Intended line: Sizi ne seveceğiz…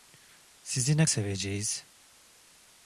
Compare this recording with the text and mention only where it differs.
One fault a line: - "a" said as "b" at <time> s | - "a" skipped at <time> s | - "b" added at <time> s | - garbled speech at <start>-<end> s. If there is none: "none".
none